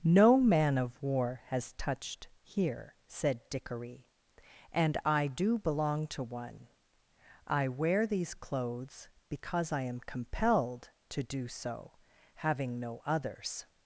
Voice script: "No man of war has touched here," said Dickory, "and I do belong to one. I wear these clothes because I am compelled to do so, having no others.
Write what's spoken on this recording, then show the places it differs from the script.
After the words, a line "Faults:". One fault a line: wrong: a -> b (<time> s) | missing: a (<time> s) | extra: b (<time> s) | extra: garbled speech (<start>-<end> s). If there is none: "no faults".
"No man of war has touched here," said Dickory, "and I do belong to one. I wear these clothes because I am compelled to do so, having no others.
Faults:
no faults